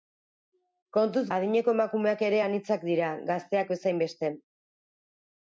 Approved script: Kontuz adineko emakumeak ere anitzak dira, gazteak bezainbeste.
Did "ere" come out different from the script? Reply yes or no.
no